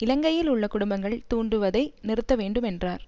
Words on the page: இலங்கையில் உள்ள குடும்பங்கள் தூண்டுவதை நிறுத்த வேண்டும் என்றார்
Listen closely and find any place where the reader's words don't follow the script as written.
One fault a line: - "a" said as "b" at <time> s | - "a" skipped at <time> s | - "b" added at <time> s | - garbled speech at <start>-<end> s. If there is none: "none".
none